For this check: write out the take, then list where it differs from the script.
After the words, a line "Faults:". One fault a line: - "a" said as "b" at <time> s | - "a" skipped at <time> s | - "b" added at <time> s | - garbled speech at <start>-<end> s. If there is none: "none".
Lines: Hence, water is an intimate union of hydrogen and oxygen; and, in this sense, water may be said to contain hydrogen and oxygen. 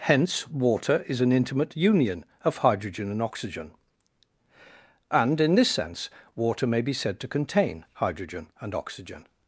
Hence, water is an intimate union of hydrogen and oxygen; and, in this sense, water may be said to contain hydrogen and oxygen.
Faults:
none